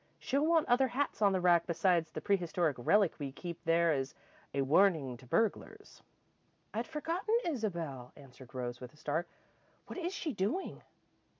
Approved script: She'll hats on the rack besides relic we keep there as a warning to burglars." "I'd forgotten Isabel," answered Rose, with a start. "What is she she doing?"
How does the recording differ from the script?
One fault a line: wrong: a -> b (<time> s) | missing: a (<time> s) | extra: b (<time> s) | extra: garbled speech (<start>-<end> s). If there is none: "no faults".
extra: want other (0.5 s)
extra: the prehistoric (2.1 s)
missing: she (10.3 s)